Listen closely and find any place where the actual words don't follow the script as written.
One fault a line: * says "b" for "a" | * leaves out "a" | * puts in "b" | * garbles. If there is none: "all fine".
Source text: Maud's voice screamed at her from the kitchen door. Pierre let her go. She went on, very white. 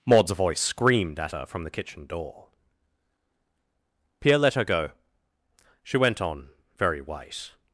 all fine